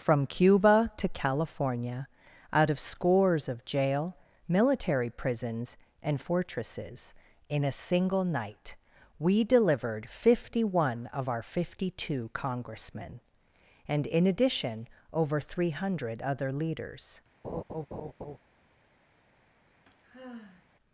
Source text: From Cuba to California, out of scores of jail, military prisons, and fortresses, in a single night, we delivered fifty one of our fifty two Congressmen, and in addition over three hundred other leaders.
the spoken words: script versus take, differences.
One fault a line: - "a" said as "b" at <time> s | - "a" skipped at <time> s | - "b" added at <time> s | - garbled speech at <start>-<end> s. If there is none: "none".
none